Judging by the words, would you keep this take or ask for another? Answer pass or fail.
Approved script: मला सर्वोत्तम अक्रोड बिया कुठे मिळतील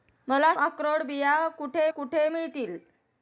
fail